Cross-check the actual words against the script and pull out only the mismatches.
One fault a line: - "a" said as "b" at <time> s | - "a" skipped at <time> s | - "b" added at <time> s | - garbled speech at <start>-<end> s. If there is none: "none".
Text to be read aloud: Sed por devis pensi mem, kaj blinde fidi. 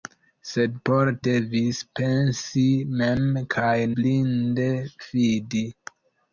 none